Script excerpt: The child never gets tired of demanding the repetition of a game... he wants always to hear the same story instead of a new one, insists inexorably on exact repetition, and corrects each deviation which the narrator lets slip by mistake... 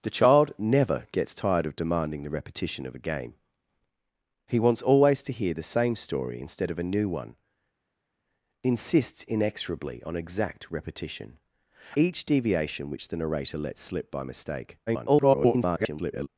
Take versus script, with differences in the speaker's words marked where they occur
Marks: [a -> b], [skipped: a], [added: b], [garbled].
The child never gets tired of demanding the repetition of a game... he wants always to hear the same story instead of a new one, insists inexorably on exact repetition, [skipped: and corrects] each deviation which the narrator lets slip by mistake... [garbled]